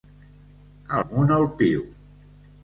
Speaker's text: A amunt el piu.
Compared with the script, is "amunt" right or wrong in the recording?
right